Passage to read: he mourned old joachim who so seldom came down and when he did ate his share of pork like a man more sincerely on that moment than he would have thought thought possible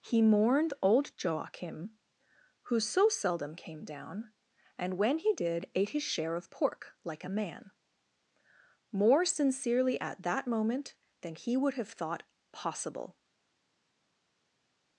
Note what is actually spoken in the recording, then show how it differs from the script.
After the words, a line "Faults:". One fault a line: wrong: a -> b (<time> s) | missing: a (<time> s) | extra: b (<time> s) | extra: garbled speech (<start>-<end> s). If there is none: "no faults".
he mourned old joachim who so seldom came down and when he did ate his share of pork like a man more sincerely at that moment than he would have thought possible
Faults:
wrong: on -> at (10.0 s)
missing: thought (12.2 s)